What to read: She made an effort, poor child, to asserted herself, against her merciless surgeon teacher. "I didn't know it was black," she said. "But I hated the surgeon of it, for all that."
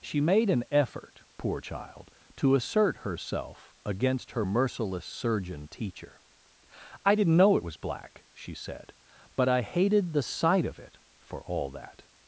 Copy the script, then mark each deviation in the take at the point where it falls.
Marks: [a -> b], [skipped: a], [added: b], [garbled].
She made an effort, poor child, to [asserted -> assert] herself, against her merciless surgeon teacher. "I didn't know it was black," she said. "But I hated the [surgeon -> sight] of it, for all that."